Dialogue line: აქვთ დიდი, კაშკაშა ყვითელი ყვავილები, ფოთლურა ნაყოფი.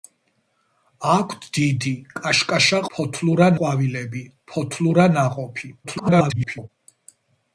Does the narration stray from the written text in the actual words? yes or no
yes